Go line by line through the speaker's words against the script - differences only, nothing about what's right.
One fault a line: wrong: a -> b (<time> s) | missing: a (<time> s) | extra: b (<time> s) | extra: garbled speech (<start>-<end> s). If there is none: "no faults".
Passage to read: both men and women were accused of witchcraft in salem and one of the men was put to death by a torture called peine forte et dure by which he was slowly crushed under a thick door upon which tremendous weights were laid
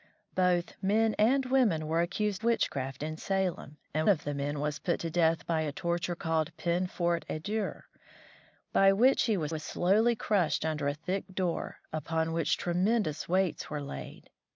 missing: of (2.4 s)
missing: one (4.1 s)
extra: was (9.5 s)